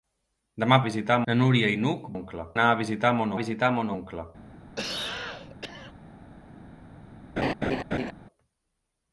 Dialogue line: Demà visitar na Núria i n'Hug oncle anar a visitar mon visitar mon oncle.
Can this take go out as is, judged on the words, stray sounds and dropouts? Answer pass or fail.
fail